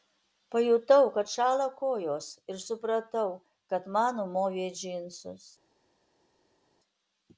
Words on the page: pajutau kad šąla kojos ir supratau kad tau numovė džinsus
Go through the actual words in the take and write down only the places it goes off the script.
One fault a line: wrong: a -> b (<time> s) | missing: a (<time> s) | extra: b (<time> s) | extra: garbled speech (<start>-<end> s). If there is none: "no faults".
wrong: tau -> man (4.0 s)